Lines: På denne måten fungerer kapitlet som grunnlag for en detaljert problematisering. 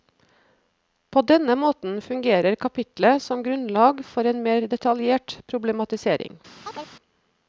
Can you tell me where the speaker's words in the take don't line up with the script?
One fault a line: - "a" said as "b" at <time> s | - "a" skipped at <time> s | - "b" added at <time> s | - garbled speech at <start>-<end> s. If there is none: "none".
- "mer" added at 4.5 s